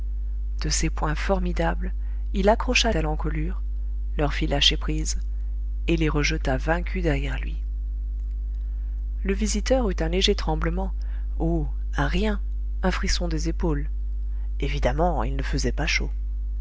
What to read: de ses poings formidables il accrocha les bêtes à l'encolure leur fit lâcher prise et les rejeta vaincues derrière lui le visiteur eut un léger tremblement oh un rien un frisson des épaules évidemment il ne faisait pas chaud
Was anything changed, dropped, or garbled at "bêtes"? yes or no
yes